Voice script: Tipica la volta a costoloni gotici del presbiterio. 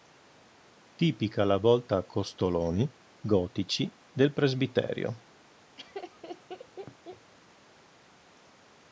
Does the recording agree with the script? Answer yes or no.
yes